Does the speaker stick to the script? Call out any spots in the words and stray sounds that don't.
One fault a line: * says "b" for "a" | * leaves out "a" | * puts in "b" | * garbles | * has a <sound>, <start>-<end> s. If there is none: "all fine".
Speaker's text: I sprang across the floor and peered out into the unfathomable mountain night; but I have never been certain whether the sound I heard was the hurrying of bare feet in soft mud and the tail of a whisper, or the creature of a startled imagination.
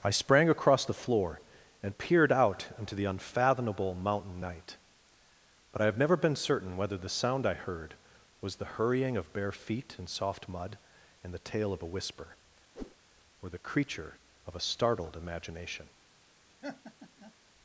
* has a whoosh, 12.7-13.0 s
* has a laugh, 16.6-17.3 s